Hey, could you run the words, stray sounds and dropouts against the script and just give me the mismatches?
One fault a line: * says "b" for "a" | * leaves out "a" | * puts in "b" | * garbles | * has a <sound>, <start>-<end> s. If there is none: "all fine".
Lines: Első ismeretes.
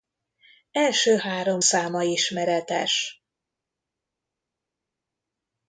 * puts in "három száma"